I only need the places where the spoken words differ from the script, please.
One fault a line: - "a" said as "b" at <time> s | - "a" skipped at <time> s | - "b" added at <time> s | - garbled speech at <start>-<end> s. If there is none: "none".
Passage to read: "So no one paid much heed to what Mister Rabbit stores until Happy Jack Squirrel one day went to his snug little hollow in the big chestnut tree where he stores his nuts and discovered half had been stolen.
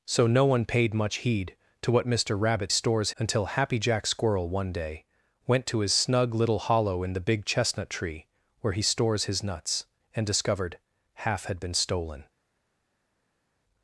none